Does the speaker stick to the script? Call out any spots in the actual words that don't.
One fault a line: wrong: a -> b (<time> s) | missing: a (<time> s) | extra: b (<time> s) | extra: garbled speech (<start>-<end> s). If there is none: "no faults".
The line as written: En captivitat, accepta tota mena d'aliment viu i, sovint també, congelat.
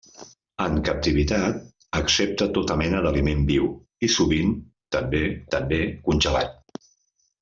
extra: també (5.6 s)